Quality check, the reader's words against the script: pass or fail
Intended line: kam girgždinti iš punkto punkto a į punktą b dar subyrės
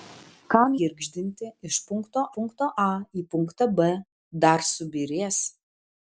pass